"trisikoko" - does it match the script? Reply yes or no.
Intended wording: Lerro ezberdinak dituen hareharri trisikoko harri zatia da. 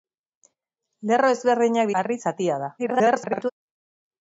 no